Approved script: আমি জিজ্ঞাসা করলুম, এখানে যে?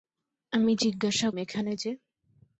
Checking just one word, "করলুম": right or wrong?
wrong